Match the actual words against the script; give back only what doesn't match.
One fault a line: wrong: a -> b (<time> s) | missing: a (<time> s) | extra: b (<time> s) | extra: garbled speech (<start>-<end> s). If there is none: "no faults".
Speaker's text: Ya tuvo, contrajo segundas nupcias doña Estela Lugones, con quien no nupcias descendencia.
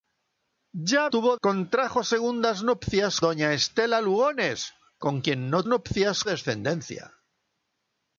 no faults